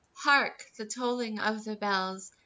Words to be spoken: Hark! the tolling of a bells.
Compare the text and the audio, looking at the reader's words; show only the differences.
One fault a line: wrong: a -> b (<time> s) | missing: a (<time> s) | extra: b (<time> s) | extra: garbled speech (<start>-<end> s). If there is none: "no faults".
wrong: a -> the (1.7 s)